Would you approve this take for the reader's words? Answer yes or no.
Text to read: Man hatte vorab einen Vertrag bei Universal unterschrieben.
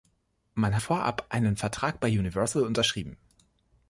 no